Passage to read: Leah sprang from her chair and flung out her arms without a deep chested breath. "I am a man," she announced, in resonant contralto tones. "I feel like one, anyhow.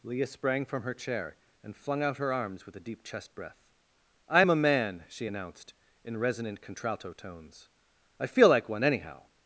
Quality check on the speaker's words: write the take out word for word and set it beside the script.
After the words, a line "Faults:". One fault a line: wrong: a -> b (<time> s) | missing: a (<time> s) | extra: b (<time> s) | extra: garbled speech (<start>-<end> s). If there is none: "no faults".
Leah sprang from her chair and flung out her arms with a deep chest breath. "I am a man," she announced, in resonant contralto tones. "I feel like one, anyhow.
Faults:
wrong: without -> with (2.6 s)
wrong: chested -> chest (3.0 s)